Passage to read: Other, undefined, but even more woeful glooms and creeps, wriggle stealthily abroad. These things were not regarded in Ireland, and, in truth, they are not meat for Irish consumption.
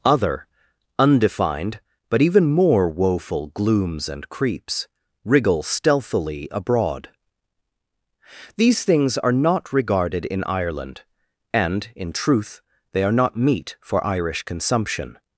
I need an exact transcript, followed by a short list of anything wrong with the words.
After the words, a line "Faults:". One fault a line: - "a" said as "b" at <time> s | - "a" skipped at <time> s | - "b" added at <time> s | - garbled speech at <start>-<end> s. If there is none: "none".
Other, undefined, but even more woeful glooms and creeps, wriggle stealthily abroad. These things are not regarded in Ireland, and, in truth, they are not meat for Irish consumption.
Faults:
- "were" said as "are" at 9.2 s